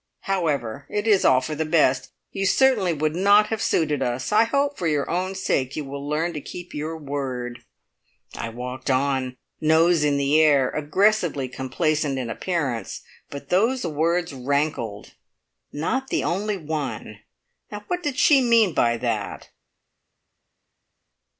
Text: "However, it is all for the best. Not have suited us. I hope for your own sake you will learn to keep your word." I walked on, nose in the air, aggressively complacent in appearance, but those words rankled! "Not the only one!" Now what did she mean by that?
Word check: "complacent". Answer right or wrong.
right